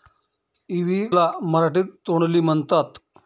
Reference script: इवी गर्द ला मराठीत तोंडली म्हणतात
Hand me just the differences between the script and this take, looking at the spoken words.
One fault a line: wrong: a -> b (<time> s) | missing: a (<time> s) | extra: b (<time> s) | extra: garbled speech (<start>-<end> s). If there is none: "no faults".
missing: गर्द (1.0 s)